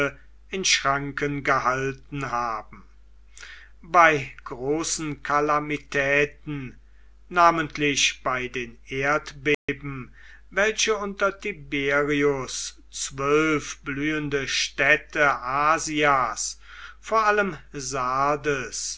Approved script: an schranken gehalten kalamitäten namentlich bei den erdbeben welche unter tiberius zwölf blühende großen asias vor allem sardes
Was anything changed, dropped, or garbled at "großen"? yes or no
yes